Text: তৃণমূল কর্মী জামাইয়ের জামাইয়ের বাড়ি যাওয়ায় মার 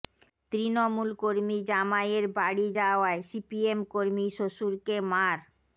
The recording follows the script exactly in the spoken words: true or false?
false